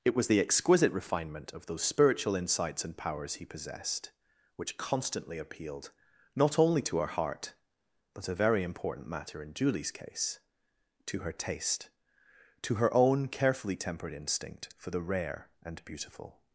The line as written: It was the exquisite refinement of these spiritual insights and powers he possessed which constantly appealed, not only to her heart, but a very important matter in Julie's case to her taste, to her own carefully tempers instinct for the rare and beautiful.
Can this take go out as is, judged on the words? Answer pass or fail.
fail